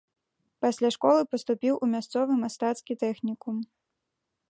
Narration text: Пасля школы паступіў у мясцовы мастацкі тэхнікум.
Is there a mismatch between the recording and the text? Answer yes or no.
no